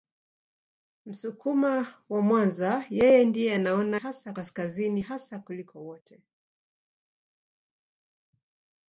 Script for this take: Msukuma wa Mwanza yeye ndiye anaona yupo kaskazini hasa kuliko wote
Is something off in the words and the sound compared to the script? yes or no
yes